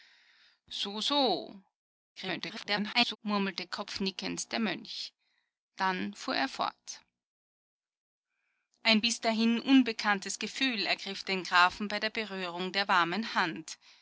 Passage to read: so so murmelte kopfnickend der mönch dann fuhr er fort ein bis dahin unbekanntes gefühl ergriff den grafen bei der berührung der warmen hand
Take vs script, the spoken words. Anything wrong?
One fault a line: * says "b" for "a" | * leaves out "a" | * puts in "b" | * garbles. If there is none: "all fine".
* garbles